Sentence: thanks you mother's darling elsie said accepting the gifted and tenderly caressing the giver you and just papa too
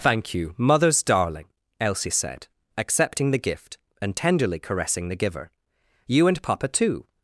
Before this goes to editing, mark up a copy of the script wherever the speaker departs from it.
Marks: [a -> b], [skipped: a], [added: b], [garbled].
[thanks -> thank] you mother's darling elsie said accepting the [gifted -> gift] and tenderly caressing the giver you and [skipped: just] papa too